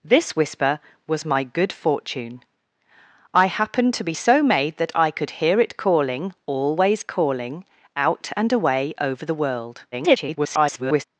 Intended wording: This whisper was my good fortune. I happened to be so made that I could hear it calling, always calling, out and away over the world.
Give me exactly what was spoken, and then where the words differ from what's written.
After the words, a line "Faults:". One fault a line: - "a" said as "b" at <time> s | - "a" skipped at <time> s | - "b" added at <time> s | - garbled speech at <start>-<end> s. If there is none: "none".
This whisper was my good fortune. I happened to be so made that I could hear it calling, always calling, out and away over the world. [garbled]
Faults:
- garbled speech at 9.9-11.0 s